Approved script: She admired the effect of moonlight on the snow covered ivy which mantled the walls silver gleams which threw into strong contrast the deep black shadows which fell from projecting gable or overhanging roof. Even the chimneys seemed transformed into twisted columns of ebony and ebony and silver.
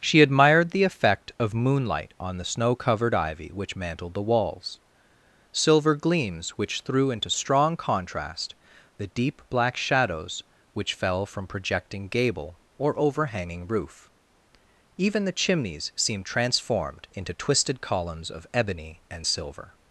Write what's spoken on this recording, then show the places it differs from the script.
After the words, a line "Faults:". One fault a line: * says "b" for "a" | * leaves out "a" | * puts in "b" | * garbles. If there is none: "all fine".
She admired the effect of moonlight on the snow covered ivy which mantled the walls silver gleams which threw into strong contrast the deep black shadows which fell from projecting gable or overhanging roof. Even the chimneys seemed transformed into twisted columns of ebony and silver.
Faults:
* leaves out "ebony and"